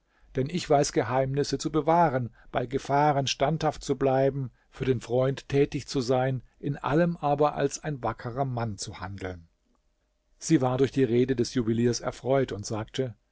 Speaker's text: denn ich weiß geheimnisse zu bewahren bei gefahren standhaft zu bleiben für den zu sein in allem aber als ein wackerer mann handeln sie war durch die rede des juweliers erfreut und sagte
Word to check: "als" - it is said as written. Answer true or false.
true